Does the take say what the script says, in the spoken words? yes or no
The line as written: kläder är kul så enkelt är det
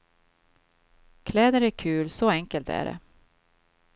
yes